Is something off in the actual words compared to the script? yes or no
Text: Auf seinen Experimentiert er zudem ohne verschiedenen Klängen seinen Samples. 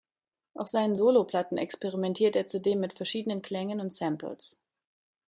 yes